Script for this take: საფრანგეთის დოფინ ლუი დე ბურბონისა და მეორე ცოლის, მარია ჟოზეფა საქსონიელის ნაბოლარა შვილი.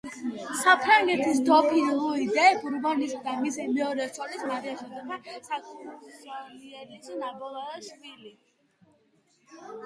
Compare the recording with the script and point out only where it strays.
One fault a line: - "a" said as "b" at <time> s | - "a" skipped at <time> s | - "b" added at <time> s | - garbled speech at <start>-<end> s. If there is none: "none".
- "მისი" added at 3.4 s